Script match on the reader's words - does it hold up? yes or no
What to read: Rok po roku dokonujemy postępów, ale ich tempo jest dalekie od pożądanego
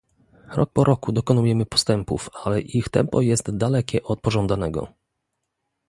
yes